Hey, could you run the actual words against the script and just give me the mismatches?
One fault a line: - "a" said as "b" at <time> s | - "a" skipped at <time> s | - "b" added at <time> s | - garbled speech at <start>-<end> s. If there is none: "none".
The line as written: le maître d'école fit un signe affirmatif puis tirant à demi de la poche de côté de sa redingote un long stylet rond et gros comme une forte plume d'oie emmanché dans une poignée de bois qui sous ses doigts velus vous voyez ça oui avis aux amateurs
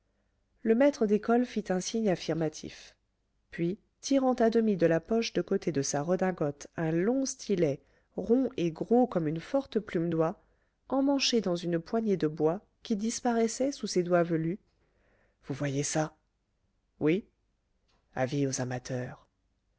- "disparaissait" added at 13.0 s